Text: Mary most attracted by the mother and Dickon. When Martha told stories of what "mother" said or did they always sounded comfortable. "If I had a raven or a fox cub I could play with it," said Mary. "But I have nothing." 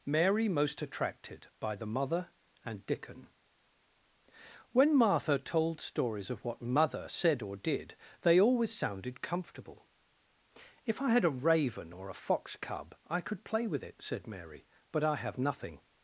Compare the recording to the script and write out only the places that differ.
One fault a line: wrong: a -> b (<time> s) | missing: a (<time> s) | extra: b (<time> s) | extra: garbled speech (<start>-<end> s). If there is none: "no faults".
no faults